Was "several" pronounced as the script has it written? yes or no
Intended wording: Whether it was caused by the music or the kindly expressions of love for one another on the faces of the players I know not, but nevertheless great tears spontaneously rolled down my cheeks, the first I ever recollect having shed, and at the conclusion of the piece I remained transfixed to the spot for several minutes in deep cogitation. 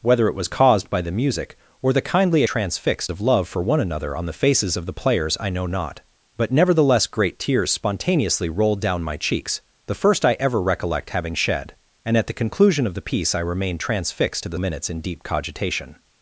no